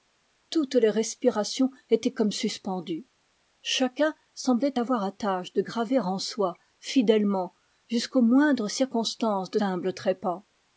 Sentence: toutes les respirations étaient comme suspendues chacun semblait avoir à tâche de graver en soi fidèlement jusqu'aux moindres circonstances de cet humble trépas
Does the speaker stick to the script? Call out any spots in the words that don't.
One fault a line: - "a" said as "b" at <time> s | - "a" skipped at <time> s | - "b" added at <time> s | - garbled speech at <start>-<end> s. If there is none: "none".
- "cet" skipped at 9.6 s